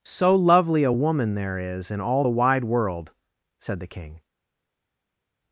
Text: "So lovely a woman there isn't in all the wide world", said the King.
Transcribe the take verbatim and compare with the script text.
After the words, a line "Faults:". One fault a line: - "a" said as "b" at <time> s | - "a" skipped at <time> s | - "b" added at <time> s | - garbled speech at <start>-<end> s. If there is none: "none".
"So lovely a woman there is in all the wide world", said the King.
Faults:
- "isn't" said as "is" at 1.6 s